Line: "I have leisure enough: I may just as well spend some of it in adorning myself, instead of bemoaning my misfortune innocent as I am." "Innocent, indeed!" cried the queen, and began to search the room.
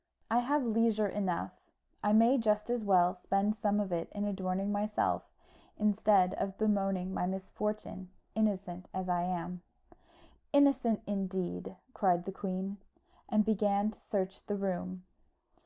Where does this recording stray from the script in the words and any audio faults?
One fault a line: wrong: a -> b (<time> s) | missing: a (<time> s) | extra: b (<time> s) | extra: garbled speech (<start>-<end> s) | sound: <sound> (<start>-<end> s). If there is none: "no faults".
no faults